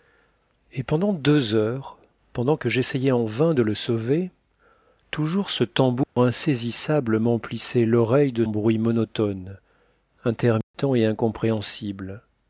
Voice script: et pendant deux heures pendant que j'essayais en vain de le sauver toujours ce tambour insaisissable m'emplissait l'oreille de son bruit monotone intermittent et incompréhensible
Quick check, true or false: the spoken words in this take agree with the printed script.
false